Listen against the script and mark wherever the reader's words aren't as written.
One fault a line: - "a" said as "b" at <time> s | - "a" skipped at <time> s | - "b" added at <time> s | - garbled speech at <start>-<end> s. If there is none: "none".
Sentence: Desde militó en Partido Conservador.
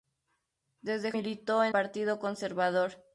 none